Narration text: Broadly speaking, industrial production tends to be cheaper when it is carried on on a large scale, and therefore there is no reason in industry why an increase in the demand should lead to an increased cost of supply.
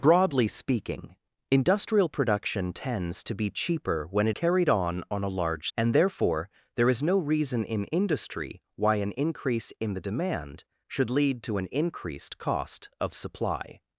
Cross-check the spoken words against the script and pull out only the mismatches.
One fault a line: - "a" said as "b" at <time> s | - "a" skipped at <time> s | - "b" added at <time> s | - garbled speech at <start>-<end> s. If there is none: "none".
- "is" skipped at 4.3 s
- "scale" skipped at 5.7 s